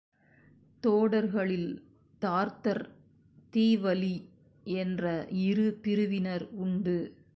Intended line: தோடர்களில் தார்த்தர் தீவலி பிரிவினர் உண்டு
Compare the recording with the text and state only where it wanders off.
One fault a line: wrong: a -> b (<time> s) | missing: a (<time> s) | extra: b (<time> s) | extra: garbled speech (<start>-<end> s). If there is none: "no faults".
extra: என்ற இரு (4.6 s)